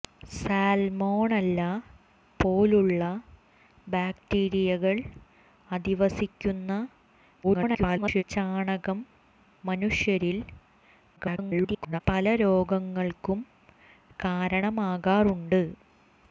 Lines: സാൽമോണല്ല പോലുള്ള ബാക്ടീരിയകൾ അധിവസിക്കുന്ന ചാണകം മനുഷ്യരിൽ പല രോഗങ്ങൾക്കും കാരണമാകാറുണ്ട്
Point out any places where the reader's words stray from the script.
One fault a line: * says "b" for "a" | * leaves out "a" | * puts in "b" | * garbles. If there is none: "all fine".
* garbles
* garbles